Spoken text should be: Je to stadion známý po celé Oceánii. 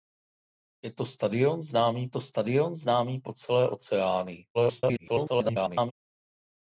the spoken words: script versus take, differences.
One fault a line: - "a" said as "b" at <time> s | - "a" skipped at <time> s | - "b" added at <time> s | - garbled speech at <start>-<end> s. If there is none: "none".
- "to stadion známý" added at 2.1 s
- garbled speech at 4.5-5.9 s